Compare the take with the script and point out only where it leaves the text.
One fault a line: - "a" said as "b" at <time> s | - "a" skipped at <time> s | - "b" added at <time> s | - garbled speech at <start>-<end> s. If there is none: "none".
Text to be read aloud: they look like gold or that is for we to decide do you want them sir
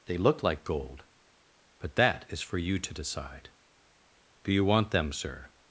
- "or" said as "but" at 1.8 s
- "we" said as "you" at 2.6 s